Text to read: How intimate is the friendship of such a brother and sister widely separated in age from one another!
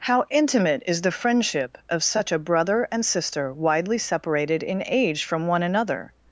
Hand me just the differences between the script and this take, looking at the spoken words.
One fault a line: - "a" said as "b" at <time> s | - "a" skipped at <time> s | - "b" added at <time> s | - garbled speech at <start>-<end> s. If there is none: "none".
none